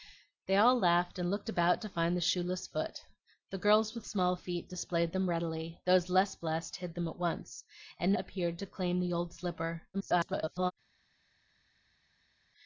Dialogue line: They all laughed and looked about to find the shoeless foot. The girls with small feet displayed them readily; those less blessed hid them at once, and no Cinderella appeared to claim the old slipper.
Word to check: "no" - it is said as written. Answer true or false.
false